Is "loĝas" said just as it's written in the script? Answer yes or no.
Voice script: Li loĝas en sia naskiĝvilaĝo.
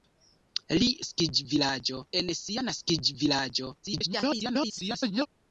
no